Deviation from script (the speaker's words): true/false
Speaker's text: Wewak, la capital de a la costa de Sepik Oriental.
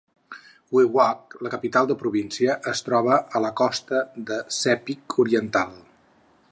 true